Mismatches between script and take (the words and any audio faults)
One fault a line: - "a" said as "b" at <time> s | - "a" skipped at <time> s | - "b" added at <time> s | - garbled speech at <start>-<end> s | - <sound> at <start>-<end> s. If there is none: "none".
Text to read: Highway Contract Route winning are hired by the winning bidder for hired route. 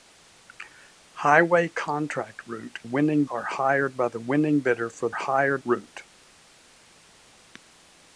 none